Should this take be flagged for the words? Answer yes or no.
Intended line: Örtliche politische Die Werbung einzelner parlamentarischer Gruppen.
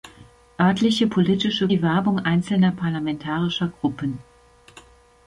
no